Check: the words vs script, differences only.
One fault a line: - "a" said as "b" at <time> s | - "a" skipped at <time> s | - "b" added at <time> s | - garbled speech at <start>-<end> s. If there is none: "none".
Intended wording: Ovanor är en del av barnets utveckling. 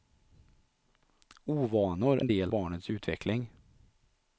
- "är" skipped at 2.2 s
- "av" skipped at 2.5 s